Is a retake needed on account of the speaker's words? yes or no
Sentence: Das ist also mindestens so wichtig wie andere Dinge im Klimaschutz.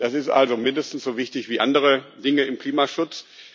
no